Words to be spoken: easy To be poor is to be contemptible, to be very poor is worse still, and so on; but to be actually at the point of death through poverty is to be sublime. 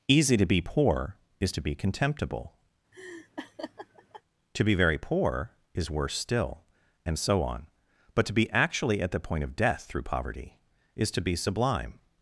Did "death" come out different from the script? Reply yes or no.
no